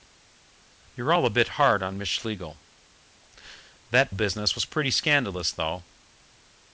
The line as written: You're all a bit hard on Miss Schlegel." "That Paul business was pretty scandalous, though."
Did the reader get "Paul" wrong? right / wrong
wrong